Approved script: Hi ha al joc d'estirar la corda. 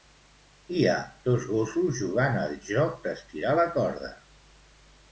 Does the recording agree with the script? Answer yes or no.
no